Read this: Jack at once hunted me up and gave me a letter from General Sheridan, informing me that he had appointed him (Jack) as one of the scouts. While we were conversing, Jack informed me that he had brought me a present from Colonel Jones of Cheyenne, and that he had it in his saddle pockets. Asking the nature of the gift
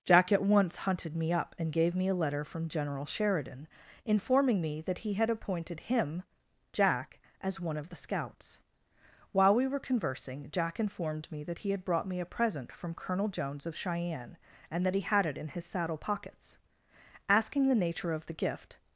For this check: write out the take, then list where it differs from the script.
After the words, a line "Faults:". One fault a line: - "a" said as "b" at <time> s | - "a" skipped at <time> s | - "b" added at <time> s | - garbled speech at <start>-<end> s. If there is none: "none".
Jack at once hunted me up and gave me a letter from General Sheridan, informing me that he had appointed him (Jack) as one of the scouts. While we were conversing, Jack informed me that he had brought me a present from Colonel Jones of Cheyenne, and that he had it in his saddle pockets. Asking the nature of the gift
Faults:
none